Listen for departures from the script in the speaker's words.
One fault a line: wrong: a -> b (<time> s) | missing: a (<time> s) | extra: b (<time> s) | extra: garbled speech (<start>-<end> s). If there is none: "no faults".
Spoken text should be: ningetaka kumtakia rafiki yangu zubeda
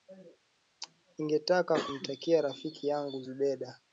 no faults